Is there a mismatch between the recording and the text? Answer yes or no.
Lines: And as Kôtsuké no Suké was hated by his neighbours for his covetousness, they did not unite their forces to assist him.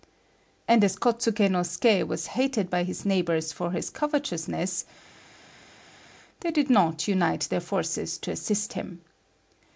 no